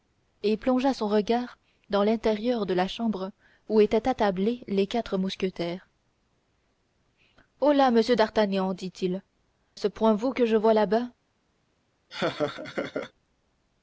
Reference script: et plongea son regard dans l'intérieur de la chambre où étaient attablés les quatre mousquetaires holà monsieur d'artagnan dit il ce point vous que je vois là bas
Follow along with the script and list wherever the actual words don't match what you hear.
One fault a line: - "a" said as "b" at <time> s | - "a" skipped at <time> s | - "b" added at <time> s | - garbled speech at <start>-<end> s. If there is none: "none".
none